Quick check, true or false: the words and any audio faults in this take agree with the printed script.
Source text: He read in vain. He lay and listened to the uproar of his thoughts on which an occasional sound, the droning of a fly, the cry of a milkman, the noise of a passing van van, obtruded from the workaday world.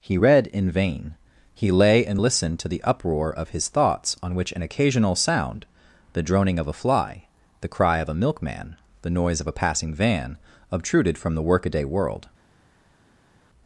false